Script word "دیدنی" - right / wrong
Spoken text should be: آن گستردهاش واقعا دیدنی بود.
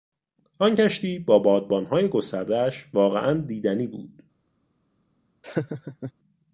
right